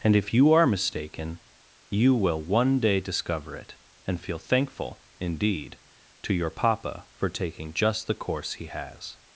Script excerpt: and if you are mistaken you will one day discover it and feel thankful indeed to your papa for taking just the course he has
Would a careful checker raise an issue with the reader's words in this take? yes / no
no